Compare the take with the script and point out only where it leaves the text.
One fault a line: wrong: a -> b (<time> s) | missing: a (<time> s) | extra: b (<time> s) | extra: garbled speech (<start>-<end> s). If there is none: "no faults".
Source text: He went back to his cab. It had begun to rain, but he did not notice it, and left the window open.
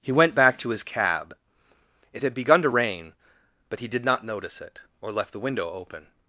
wrong: and -> or (5.0 s)